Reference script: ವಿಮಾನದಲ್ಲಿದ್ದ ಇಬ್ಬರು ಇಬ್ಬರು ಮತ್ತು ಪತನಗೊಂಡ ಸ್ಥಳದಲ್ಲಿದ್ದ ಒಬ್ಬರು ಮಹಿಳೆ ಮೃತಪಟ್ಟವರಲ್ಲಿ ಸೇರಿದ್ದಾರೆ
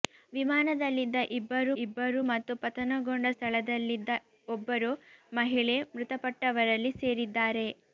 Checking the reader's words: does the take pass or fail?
pass